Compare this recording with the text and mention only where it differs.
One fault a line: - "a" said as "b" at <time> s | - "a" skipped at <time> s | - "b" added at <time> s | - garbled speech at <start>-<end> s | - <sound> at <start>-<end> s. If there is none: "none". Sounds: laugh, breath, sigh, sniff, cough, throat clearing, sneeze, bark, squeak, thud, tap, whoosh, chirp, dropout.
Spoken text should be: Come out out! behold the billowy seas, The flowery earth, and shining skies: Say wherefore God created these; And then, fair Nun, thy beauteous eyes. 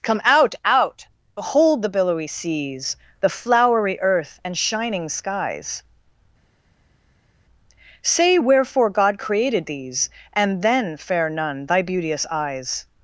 none